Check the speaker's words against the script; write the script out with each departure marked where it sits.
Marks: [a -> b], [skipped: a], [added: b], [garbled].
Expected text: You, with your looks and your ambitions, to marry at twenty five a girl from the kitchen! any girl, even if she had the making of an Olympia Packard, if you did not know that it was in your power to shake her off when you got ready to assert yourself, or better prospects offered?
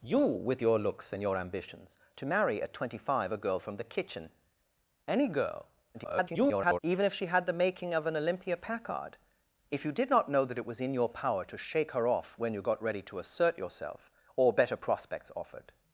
You, with your looks and your ambitions, to marry at twenty five a girl from the kitchen! any girl, [garbled] even if she had the making of an Olympia Packard, if you did not know that it was in your power to shake her off when you got ready to assert yourself, or better prospects offered?